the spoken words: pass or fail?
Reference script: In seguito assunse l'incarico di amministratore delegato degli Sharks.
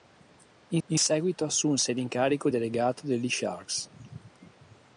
fail